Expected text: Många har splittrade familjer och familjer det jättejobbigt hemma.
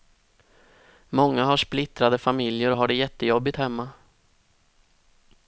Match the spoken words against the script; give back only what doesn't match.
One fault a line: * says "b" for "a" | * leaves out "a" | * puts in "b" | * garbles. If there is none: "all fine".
* says "har" for "familjer"